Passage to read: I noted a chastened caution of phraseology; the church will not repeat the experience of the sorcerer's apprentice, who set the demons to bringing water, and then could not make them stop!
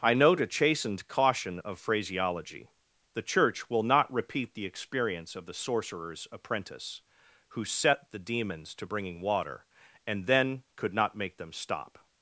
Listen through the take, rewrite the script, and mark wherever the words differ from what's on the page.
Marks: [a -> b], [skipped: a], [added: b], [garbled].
I [noted -> note] a chastened caution of phraseology; the church will not repeat the experience of the sorcerer's apprentice, who set the demons to bringing water, and then could not make them stop!